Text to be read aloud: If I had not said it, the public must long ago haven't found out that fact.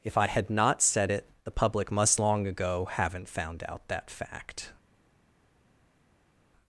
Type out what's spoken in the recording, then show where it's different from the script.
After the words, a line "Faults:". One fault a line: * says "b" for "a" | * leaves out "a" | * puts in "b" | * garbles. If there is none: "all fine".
If I had not said it, the public must long ago haven't found out that fact.
Faults:
all fine